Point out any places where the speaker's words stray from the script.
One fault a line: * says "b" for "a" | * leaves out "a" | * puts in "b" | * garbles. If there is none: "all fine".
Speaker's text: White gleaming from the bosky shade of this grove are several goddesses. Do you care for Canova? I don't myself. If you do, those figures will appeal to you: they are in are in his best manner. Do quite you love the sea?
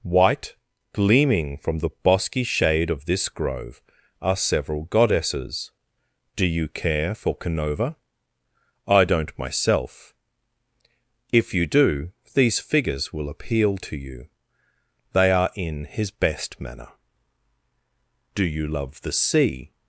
* says "these" for "those"
* leaves out "are in"
* leaves out "quite"